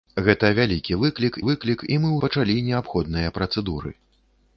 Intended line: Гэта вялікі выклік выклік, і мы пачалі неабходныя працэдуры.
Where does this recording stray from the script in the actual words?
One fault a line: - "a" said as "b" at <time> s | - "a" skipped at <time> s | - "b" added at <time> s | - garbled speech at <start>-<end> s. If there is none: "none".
none